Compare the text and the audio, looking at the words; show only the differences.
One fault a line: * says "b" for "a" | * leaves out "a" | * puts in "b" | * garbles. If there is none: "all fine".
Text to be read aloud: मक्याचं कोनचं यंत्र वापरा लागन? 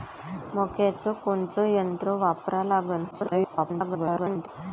* garbles